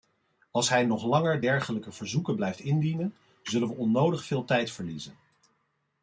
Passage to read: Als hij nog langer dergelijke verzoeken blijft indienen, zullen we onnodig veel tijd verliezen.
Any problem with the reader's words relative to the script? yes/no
no